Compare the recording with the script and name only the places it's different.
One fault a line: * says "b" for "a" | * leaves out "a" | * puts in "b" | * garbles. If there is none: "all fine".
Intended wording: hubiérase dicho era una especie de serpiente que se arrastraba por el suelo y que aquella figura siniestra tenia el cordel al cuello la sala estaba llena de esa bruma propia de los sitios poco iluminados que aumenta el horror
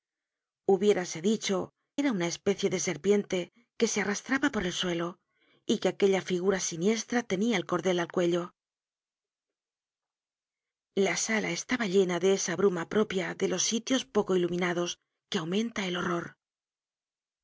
all fine